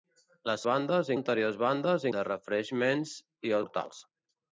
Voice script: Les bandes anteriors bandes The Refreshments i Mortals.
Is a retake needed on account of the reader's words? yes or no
no